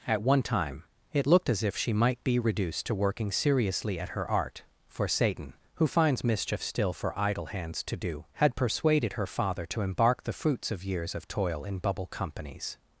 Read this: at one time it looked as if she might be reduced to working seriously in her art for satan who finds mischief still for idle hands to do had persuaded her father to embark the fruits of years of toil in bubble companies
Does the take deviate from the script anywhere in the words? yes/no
yes